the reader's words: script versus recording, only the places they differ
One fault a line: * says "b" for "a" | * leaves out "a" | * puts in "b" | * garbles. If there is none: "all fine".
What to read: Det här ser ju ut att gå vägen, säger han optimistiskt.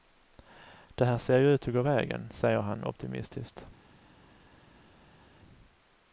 all fine